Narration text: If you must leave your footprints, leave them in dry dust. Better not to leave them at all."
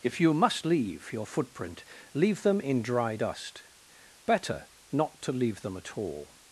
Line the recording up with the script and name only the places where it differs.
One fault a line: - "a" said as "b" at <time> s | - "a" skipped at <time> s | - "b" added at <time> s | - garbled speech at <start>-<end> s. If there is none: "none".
- "footprints" said as "footprint" at 1.3 s